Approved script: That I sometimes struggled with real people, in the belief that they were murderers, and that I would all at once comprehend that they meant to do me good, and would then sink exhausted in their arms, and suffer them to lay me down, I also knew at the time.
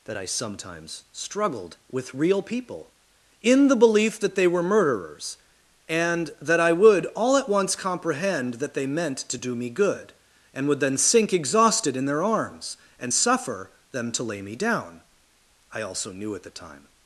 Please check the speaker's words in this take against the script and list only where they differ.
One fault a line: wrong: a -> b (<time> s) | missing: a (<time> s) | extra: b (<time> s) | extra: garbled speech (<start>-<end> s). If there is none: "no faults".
no faults